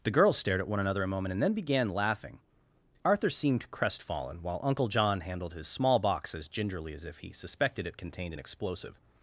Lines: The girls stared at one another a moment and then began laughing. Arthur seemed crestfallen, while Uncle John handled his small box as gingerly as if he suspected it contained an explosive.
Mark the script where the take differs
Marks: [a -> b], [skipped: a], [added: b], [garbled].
The girls stared at one another a moment and then began laughing. Arthur seemed crestfallen, while Uncle John handled his small box as gingerly as if he suspected it contained an explosive.